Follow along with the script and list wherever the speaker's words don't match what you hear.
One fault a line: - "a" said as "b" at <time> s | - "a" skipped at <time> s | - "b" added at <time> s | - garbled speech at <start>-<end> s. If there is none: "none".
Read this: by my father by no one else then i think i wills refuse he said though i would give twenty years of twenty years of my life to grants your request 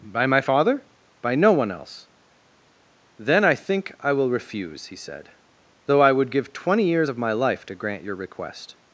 - "wills" said as "will" at 4.1 s
- "twenty years of" skipped at 7.2 s
- "grants" said as "grant" at 7.7 s